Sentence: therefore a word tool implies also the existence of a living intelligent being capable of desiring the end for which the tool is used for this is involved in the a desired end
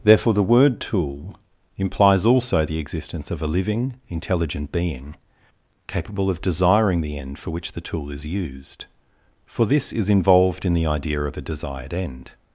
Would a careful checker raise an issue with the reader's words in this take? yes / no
yes